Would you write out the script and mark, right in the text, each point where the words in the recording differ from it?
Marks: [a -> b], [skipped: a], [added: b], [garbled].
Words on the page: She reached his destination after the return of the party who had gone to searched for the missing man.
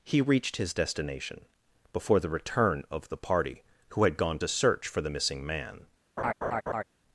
[She -> He] reached his destination [after -> before] the return of the party who had gone to [searched -> search] for the missing man.